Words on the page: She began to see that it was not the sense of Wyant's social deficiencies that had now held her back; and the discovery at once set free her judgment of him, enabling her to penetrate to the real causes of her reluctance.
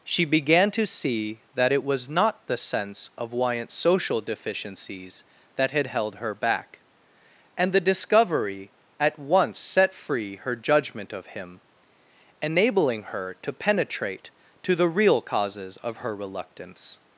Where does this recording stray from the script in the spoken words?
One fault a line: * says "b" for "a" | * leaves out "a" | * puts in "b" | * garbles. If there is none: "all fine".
* leaves out "now"